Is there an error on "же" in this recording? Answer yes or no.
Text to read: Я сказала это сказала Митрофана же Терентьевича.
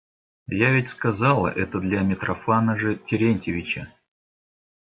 no